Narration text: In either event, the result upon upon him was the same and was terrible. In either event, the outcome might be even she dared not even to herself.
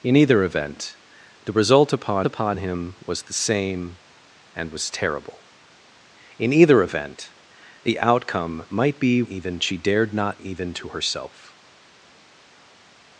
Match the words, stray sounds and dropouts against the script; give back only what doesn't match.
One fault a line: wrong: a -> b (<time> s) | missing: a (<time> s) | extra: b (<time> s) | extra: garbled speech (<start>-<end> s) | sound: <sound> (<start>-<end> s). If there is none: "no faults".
no faults